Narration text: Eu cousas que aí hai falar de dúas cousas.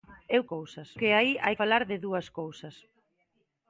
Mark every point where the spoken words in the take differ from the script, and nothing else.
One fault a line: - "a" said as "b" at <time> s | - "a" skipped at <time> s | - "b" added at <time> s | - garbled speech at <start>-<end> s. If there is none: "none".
none